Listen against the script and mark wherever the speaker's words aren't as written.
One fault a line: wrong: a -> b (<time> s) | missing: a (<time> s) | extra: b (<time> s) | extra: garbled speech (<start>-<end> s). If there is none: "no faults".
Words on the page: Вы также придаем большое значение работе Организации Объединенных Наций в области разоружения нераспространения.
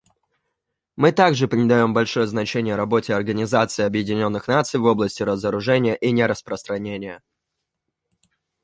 wrong: Вы -> Мы (0.9 s)
extra: и (6.0 s)